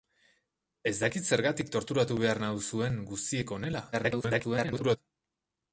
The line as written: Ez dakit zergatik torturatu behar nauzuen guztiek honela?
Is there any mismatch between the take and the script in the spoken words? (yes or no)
yes